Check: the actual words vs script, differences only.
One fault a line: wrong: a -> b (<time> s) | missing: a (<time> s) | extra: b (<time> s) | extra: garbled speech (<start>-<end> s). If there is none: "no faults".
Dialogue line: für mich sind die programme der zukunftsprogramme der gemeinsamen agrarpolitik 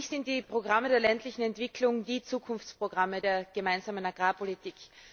extra: ländlichen entwicklung die (1.0 s)